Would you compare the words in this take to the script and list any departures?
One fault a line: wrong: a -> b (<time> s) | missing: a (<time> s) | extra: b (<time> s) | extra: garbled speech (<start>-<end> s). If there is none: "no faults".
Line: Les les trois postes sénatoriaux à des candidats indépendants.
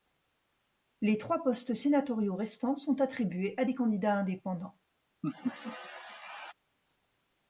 missing: les (1.2 s)
extra: restants sont attribués (2.4 s)